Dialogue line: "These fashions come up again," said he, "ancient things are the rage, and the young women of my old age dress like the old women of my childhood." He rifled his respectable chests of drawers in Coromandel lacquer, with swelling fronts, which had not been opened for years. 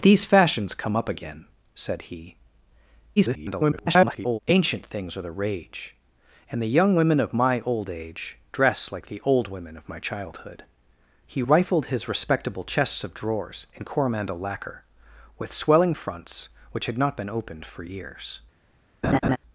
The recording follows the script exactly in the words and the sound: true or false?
false